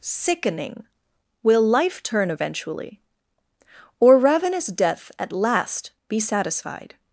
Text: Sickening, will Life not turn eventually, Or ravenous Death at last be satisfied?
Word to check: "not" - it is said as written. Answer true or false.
false